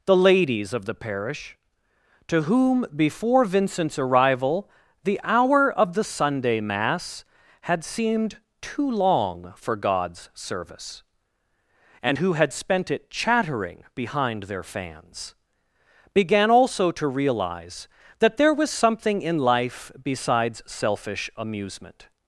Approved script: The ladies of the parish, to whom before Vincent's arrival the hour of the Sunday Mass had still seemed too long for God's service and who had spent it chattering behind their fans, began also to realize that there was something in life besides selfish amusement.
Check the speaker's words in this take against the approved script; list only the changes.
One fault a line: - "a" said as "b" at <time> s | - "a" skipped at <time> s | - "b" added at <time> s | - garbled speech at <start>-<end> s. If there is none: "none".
- "still" skipped at 7.8 s